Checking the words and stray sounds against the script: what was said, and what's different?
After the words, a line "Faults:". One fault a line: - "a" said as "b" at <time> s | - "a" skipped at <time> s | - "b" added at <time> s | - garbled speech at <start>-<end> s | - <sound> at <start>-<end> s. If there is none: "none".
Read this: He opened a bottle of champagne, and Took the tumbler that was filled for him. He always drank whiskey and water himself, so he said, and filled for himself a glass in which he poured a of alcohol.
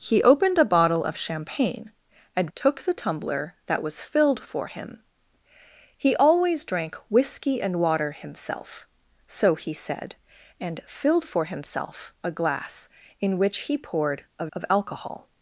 He opened a bottle of champagne, and Took the tumbler that was filled for him. He always drank whiskey and water himself, so he said, and filled for himself a glass in which he poured a of alcohol.
Faults:
none